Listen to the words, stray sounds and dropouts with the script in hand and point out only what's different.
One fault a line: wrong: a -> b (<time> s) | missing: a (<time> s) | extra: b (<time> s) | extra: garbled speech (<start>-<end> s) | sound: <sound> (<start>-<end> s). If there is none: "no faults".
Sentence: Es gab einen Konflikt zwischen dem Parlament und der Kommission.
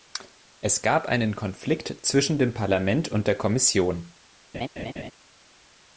sound: laugh (4.5-5.1 s)